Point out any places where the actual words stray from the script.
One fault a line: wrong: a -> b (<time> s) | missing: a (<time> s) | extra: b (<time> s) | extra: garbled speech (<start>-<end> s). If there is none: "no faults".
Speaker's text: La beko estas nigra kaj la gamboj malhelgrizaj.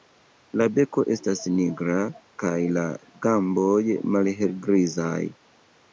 no faults